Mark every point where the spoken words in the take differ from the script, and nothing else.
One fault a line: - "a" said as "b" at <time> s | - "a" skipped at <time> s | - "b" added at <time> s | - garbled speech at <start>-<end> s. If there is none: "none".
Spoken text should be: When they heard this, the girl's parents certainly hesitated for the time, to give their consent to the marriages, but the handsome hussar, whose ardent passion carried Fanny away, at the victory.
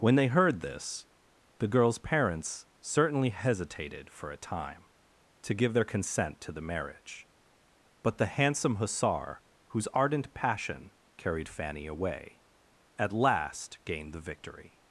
- "the" said as "a" at 4.3 s
- "marriages" said as "marriage" at 6.7 s
- "last gained" added at 13.1 s